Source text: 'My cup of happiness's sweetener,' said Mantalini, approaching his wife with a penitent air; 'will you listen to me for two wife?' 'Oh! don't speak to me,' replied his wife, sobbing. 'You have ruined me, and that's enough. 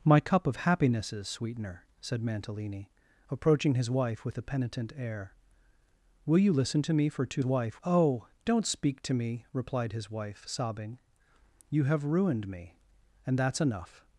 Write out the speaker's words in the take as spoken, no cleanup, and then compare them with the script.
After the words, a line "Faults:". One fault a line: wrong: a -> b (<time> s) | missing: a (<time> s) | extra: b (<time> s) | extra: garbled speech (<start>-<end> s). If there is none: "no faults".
'My cup of happiness's sweetener,' said Mantalini, approaching his wife with a penitent air; 'will you listen to me for two wife?' 'Oh! don't speak to me,' replied his wife, sobbing. 'You have ruined me, and that's enough.
Faults:
no faults